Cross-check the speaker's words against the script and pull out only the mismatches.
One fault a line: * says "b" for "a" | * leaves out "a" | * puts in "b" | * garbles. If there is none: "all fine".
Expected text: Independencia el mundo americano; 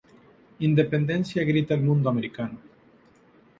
* puts in "grita"